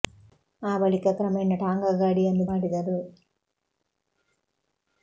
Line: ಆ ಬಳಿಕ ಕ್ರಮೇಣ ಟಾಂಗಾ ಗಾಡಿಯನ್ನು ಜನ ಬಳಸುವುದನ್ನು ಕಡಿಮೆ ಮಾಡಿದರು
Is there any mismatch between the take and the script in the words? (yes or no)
yes